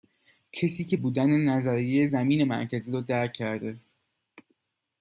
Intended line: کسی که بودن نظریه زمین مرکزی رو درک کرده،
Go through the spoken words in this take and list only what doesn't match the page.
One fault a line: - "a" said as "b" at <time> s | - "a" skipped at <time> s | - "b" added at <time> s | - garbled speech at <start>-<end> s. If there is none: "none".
none